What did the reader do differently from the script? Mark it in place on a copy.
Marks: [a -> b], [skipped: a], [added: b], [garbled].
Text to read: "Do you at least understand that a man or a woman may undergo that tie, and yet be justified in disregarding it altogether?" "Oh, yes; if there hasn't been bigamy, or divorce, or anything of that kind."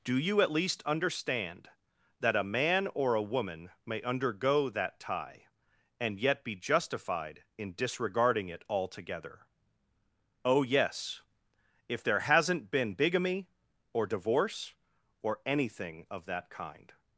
"Do you at least understand that a man or a woman may undergo that tie, and yet be justified in disregarding it altogether?" "Oh, yes; if there hasn't been bigamy, or divorce, or anything of that kind."